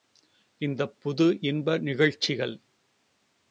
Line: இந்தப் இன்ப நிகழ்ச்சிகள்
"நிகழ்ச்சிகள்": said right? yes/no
yes